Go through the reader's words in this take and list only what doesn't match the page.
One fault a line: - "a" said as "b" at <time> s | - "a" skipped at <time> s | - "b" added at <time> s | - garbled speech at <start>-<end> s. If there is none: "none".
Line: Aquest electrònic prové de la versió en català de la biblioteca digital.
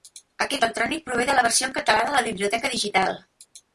none